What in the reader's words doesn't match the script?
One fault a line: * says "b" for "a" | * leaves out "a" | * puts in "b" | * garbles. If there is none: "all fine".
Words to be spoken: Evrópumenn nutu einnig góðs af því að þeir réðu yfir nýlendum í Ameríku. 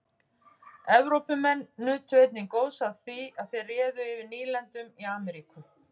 all fine